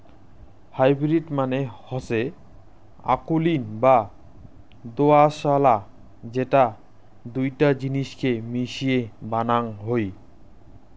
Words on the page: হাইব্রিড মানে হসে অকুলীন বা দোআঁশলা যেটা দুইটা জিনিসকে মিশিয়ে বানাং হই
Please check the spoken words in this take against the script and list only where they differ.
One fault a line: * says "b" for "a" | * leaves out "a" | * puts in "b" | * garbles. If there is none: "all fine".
all fine